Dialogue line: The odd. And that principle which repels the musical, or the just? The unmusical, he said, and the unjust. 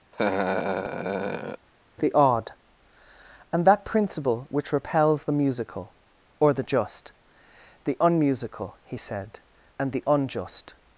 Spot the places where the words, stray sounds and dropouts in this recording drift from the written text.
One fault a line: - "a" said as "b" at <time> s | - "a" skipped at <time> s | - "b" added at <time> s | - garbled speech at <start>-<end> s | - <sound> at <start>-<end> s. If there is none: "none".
- laugh at 0.1-1.7 s